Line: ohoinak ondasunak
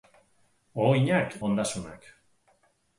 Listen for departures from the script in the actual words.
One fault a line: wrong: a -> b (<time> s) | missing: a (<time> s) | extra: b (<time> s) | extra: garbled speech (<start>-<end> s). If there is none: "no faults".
no faults